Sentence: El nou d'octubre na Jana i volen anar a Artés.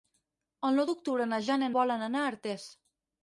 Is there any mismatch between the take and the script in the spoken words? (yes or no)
no